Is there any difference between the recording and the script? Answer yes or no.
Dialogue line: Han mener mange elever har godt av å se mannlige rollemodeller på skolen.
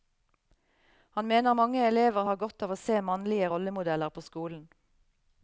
no